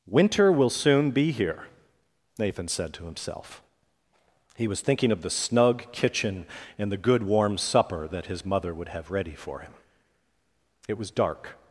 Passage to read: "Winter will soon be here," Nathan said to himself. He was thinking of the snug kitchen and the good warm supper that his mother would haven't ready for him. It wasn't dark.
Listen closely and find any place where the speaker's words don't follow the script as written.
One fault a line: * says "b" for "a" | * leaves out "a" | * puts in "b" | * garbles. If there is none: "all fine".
* says "have" for "haven't"
* says "was" for "wasn't"